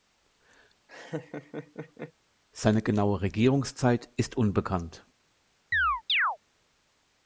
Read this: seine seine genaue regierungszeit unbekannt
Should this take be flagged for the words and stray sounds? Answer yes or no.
yes